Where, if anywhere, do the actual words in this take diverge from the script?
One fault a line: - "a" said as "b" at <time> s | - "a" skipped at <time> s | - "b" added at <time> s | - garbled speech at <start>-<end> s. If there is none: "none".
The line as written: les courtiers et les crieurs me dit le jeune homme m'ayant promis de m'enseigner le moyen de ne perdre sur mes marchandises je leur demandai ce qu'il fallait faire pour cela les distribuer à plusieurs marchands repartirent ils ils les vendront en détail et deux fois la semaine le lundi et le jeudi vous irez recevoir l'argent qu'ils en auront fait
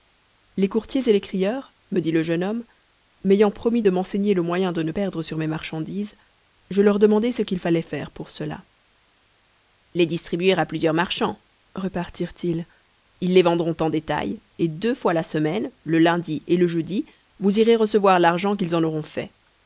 none